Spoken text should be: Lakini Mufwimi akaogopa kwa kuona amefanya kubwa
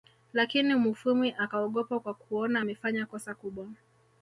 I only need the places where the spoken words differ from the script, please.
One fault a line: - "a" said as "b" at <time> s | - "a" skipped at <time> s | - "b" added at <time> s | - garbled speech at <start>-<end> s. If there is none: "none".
- "kosa" added at 3.0 s